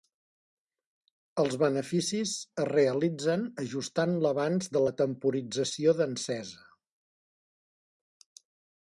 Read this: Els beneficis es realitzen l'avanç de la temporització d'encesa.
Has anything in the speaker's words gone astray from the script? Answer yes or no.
yes